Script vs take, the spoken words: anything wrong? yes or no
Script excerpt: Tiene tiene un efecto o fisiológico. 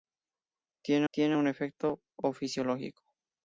no